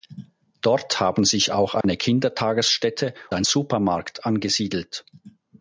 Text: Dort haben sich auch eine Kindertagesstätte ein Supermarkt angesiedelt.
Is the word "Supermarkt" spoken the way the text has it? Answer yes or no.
yes